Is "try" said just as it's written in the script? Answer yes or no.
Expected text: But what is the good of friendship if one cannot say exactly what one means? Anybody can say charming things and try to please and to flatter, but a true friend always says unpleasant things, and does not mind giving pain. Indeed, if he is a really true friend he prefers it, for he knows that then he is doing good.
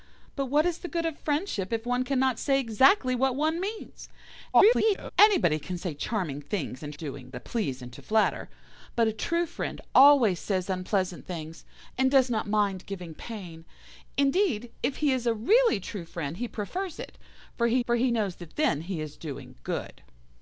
no